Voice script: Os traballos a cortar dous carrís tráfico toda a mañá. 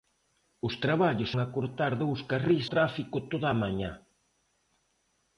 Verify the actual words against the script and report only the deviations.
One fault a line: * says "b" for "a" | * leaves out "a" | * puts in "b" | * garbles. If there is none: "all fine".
all fine